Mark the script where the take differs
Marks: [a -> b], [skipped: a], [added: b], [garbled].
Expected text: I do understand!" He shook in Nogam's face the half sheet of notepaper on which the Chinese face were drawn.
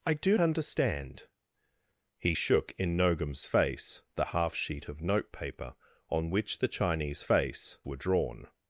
I do understand!" He shook in Nogam's face the half sheet of notepaper on which the Chinese face were drawn.